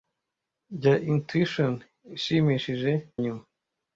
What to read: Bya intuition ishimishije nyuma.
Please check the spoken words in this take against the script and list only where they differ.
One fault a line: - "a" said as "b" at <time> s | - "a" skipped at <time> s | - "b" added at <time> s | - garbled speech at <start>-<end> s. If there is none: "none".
none